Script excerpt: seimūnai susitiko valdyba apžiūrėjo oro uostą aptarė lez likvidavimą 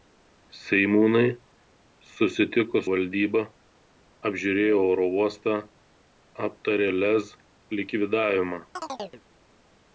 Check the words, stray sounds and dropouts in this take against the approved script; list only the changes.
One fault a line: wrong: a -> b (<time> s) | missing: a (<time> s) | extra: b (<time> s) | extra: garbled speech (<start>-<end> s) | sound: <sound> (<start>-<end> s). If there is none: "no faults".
sound: chirp (8.8-9.2 s)